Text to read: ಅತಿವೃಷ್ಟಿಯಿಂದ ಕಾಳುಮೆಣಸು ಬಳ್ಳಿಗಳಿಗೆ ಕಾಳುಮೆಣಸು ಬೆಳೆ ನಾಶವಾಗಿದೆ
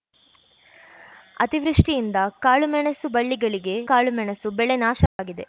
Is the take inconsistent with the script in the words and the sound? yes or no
yes